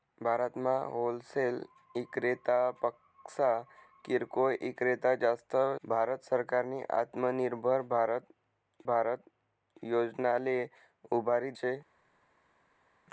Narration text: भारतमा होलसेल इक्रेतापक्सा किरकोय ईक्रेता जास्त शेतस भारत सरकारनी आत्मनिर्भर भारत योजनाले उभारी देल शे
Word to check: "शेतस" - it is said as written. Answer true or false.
false